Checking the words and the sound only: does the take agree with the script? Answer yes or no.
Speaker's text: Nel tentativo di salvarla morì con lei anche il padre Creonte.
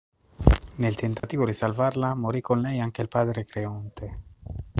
no